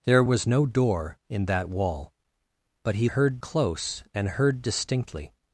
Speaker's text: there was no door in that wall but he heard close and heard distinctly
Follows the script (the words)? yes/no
yes